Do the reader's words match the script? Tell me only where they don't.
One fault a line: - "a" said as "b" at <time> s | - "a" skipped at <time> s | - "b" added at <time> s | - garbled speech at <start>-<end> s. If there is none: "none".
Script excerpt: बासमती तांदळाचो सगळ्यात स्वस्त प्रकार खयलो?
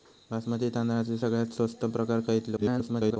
- garbled speech at 2.6-3.2 s